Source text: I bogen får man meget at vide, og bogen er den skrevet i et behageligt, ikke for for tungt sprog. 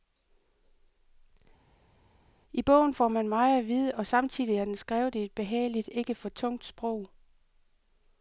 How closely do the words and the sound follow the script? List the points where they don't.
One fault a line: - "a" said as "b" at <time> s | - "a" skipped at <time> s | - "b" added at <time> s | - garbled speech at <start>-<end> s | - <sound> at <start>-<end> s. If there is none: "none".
- "bogen" said as "samtidig" at 4.1 s
- "for" skipped at 6.3 s